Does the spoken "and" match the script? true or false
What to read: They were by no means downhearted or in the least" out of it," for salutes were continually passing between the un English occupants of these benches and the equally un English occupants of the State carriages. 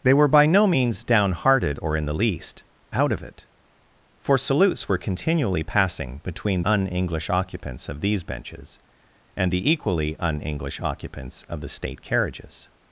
true